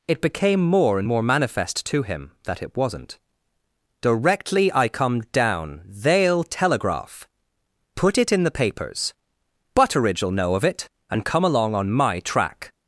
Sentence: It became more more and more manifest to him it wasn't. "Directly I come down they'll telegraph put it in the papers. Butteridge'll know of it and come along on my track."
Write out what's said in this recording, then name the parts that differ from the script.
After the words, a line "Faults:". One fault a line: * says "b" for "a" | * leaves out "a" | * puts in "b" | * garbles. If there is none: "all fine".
It became more and more manifest to him that it wasn't. "Directly I come down they'll telegraph put it in the papers. Butteridge'll know of it and come along on my track."
Faults:
* leaves out "more"
* puts in "that"